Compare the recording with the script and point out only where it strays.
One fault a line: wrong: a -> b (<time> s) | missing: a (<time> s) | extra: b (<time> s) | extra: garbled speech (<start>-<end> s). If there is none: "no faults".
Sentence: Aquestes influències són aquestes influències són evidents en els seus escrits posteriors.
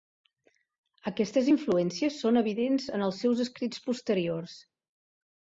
missing: aquestes influències són (2.4 s)